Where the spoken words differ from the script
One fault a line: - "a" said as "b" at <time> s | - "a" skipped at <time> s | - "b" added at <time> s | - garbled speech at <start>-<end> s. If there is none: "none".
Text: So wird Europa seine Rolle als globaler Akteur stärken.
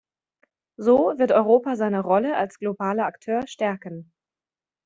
none